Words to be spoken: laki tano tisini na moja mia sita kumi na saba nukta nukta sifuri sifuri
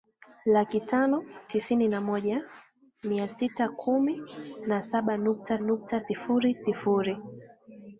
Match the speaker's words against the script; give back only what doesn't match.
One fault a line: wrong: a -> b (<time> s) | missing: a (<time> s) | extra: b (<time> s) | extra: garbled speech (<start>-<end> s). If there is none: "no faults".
no faults